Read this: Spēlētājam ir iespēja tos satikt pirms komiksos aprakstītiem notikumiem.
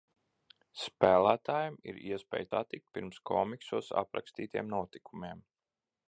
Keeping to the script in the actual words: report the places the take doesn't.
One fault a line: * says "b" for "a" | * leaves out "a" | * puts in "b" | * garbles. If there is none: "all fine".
* leaves out "tos"